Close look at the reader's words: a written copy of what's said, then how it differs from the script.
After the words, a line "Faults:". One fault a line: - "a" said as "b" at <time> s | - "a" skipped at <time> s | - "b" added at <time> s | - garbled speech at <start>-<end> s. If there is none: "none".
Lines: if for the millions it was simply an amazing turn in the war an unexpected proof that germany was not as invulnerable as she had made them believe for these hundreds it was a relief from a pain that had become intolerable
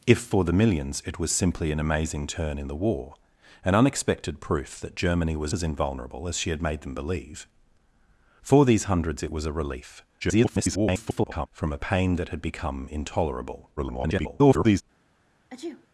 if for the millions it was simply an amazing turn in the war an unexpected proof that germany was as invulnerable as she had made them believe for these hundreds it was a relief [garbled] from a pain that had become intolerable [garbled]
Faults:
- "not" skipped at 5.5 s
- garbled speech at 10.2-11.5 s
- garbled speech at 13.8-14.8 s